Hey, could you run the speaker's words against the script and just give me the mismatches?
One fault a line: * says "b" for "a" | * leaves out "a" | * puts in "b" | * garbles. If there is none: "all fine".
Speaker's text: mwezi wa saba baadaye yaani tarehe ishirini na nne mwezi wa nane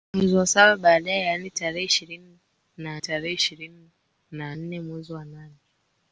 * puts in "tarehe ishirini na"